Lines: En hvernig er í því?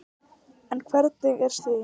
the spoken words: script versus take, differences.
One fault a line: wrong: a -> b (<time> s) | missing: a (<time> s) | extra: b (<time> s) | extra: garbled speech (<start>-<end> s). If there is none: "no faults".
no faults